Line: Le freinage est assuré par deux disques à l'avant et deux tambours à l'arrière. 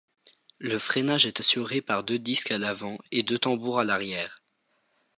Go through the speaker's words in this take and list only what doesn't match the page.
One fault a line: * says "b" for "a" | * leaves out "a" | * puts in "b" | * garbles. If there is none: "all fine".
all fine